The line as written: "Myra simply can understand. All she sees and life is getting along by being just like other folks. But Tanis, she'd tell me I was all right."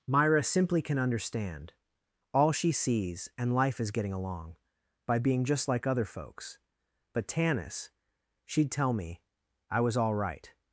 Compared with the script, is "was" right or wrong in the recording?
right